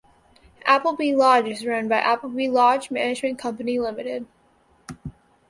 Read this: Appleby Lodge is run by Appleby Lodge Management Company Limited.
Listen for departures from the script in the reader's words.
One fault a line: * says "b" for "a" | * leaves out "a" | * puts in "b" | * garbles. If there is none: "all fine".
all fine